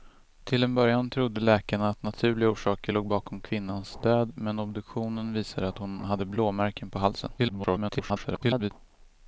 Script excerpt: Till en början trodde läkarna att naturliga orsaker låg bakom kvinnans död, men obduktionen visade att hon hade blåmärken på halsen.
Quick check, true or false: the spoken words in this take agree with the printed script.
false